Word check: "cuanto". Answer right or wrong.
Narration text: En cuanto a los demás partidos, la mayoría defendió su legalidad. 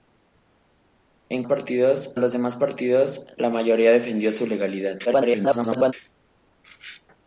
wrong